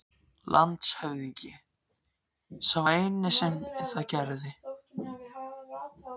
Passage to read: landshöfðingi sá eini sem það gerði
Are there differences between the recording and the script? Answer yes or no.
no